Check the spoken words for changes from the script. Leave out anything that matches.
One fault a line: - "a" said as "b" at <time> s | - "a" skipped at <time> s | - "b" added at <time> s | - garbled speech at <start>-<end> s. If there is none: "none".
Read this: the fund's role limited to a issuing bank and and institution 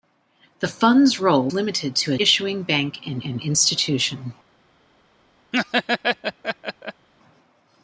none